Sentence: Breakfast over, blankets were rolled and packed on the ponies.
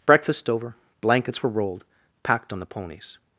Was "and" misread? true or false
true